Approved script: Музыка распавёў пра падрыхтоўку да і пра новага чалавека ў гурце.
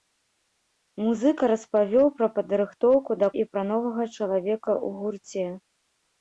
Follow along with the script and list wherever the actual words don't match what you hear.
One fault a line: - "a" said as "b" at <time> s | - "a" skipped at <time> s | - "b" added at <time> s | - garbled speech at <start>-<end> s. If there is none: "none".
none